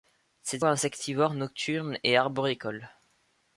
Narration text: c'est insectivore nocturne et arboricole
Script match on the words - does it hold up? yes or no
yes